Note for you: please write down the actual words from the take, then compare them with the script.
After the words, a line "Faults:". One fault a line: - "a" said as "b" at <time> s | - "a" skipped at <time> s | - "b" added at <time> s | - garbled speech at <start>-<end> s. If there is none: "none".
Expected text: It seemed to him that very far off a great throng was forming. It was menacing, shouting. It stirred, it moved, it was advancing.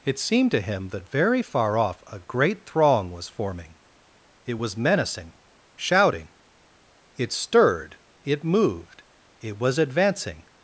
It seemed to him that very far off a great throng was forming. It was menacing, shouting. It stirred, it moved, it was advancing.
Faults:
none